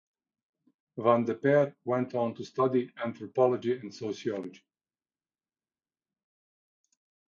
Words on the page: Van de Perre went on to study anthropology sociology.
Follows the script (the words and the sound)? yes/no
no